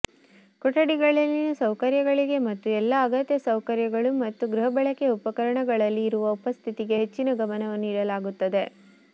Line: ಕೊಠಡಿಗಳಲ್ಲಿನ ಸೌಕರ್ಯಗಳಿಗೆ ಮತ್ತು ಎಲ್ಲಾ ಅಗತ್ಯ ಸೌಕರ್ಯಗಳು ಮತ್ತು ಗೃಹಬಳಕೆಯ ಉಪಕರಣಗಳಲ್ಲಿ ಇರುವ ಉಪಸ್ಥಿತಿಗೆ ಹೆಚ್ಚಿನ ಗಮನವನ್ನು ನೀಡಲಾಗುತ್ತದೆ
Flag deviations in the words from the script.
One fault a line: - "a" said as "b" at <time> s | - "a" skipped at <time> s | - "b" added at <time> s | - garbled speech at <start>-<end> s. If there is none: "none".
none